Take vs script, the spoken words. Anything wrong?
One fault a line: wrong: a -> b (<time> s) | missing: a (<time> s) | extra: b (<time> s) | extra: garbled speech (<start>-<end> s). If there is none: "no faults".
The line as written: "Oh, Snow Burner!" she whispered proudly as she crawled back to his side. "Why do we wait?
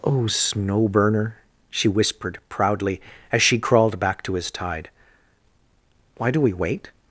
wrong: side -> tide (4.5 s)